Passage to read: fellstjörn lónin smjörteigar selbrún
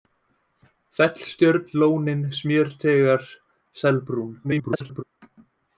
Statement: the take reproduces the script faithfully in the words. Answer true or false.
false